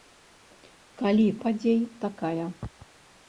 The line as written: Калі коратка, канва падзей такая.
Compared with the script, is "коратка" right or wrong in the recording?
wrong